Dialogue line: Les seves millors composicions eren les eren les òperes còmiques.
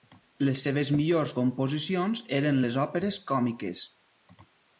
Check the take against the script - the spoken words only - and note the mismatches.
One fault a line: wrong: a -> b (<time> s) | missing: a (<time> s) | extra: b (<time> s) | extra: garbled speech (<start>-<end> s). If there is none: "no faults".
missing: eren les (2.8 s)